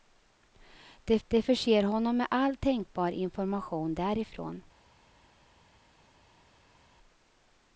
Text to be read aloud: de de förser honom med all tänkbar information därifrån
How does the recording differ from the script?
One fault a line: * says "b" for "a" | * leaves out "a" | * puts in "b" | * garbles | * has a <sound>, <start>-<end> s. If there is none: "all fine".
all fine